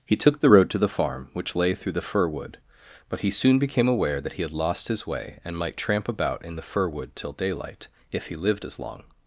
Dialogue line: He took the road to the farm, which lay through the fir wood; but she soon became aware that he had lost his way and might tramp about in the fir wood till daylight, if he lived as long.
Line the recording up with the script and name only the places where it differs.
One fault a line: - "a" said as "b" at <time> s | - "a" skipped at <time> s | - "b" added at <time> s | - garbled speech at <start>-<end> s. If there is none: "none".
- "she" said as "he" at 3.2 s